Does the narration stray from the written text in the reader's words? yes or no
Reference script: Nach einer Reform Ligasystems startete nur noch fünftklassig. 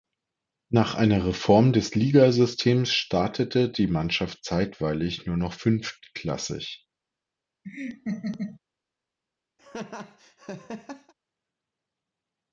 yes